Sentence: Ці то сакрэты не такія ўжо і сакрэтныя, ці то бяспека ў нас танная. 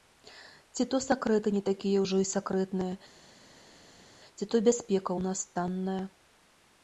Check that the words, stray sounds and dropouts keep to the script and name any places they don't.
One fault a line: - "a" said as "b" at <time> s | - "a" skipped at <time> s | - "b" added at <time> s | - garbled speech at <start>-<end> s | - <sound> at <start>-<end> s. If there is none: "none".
none